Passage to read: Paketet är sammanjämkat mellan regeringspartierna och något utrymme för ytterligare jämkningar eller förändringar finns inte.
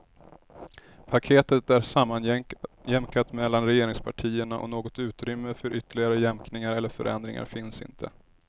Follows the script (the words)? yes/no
yes